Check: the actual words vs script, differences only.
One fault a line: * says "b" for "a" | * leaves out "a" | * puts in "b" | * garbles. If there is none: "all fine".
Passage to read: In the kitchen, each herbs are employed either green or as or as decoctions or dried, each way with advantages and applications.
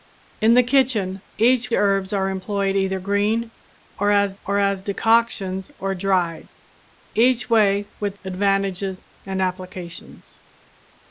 all fine